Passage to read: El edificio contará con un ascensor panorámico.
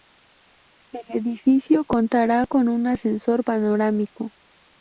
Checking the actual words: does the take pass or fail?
pass